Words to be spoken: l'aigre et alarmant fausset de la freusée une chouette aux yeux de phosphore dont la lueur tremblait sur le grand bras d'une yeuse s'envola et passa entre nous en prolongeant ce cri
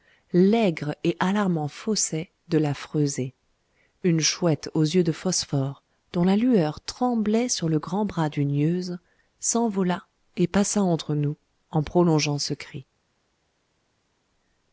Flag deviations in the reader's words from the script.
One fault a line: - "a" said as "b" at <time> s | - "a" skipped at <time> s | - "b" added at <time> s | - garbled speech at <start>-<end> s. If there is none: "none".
none